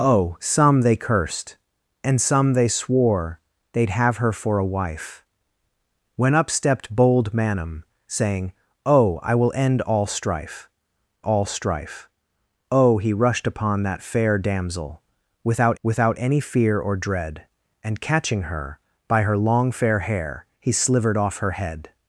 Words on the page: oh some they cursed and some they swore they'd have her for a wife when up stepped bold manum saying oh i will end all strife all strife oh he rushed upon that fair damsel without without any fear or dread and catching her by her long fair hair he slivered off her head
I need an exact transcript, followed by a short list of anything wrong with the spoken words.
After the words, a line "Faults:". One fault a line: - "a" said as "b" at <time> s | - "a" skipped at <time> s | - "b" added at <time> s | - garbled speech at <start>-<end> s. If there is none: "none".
oh some they cursed and some they swore they'd have her for a wife when up stepped bold manum saying oh i will end all strife all strife oh he rushed upon that fair damsel without without any fear or dread and catching her by her long fair hair he slivered off her head
Faults:
none